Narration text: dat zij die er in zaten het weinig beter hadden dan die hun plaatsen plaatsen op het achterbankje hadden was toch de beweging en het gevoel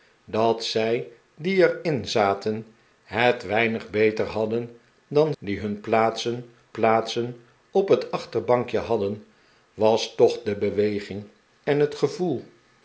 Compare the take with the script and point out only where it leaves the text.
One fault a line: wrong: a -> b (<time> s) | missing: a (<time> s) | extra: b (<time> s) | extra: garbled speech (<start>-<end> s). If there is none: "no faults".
no faults